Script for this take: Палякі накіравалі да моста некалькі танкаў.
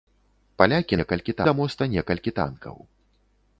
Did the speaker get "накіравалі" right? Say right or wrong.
wrong